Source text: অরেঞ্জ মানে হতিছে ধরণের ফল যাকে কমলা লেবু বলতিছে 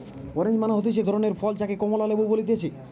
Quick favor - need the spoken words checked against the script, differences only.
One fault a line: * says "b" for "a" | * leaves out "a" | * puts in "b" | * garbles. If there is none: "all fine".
all fine